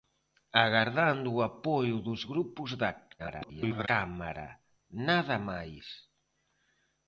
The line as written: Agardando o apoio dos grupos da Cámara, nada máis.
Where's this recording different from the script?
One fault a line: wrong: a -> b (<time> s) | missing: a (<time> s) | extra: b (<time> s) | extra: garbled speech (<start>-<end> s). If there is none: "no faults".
extra: garbled speech (3.2-3.9 s)